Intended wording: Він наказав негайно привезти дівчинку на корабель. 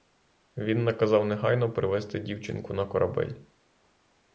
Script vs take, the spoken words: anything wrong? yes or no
no